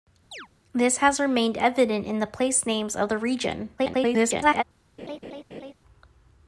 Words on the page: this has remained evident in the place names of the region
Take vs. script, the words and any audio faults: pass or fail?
fail